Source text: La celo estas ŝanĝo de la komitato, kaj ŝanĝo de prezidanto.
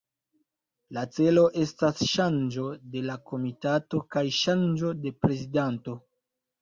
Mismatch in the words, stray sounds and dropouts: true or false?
false